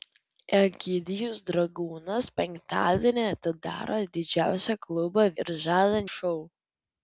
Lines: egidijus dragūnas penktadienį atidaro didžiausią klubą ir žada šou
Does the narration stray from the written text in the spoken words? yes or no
no